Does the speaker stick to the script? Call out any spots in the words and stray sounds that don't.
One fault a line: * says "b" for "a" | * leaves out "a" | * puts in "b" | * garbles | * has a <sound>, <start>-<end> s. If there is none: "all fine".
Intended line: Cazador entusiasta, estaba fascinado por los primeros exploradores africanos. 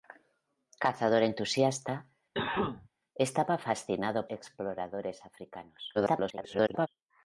* has a cough, 2.3-2.9 s
* leaves out "por los primeros"
* garbles